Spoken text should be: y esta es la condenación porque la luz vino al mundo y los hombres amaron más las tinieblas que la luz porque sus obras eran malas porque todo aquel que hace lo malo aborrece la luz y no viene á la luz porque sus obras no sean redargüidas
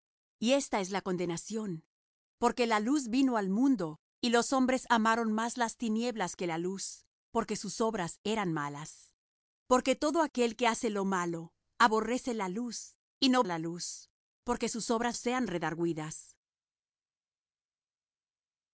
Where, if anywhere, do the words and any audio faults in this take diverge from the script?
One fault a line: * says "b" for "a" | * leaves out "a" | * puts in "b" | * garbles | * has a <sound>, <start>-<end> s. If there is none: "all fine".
* leaves out "viene"
* leaves out "no"